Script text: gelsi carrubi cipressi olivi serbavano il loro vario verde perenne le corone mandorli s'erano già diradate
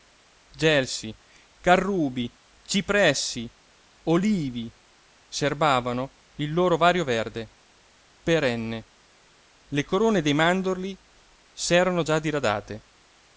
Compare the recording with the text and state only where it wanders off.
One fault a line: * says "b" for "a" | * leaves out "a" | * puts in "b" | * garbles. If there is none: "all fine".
* puts in "dei"